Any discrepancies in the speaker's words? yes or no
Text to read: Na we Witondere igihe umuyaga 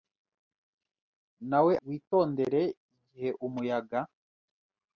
no